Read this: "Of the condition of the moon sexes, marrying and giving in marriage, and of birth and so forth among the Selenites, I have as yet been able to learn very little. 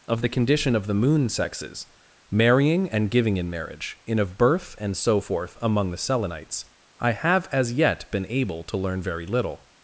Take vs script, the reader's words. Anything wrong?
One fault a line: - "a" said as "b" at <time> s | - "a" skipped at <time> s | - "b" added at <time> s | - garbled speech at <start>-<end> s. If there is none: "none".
- "and" said as "in" at 4.0 s